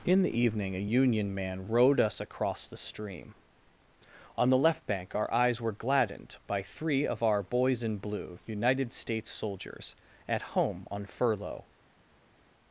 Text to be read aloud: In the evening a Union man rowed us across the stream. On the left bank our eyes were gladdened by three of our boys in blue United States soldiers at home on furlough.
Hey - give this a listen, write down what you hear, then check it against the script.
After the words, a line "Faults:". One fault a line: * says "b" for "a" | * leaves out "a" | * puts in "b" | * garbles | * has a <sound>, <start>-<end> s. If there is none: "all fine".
In the evening a Union man rowed us across the stream. On the left bank our eyes were gladdened by three of our boys in blue United States soldiers at home on furlough.
Faults:
all fine